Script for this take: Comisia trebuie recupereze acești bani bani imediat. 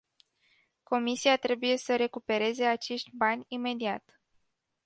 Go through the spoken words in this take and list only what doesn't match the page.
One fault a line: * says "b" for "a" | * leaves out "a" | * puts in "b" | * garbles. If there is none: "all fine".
* puts in "să"
* leaves out "bani"